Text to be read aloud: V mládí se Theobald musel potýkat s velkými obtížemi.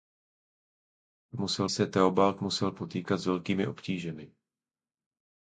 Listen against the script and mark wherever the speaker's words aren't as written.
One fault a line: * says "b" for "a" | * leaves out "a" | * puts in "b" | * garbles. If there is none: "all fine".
* says "musel" for "mládí"